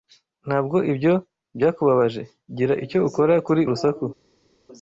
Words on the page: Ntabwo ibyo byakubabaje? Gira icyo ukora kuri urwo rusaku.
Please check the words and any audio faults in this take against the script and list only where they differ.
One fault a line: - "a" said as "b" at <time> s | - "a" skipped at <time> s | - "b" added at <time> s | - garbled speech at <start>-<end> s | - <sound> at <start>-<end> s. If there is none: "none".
- "urwo" skipped at 3.6 s